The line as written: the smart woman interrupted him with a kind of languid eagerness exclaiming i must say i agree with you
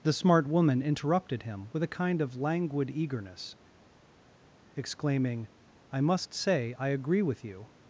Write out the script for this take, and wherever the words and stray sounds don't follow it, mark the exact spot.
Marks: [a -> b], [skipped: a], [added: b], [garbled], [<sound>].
the smart woman interrupted him with a kind of languid eagerness exclaiming i must say i agree with you